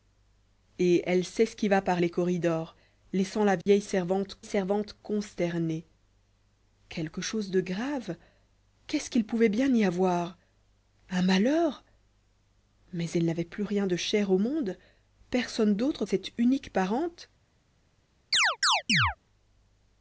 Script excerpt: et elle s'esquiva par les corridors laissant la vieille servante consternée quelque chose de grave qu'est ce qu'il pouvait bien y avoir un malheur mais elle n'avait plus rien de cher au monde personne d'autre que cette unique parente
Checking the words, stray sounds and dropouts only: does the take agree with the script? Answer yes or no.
no